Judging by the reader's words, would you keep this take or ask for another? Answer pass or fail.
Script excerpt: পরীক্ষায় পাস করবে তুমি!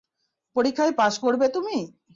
pass